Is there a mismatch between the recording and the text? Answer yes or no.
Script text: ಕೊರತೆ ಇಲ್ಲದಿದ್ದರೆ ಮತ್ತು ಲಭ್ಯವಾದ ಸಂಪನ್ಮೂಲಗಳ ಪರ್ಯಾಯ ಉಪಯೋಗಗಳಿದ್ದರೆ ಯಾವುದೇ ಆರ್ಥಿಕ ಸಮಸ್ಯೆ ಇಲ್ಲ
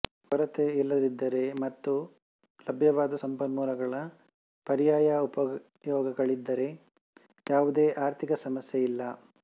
no